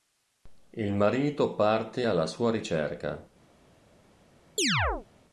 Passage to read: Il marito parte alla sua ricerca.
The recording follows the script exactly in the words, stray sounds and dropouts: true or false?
false